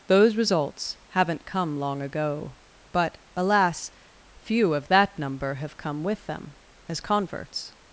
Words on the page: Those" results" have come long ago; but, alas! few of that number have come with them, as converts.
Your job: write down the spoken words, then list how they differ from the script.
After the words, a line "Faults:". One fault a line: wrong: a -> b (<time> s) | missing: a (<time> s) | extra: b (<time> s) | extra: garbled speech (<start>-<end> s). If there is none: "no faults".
Those" results" haven't come long ago; but, alas! few of that number have come with them, as converts.
Faults:
wrong: have -> haven't (1.1 s)